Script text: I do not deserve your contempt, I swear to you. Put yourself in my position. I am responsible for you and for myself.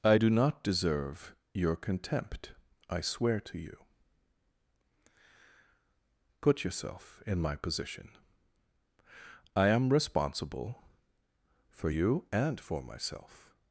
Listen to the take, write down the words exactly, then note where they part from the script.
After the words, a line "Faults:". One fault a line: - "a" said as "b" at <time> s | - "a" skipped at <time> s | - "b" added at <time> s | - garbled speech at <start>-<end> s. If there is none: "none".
I do not deserve your contempt, I swear to you. Put yourself in my position. I am responsible for you and for myself.
Faults:
none